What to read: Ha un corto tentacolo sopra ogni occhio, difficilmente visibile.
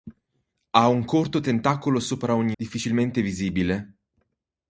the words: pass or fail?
fail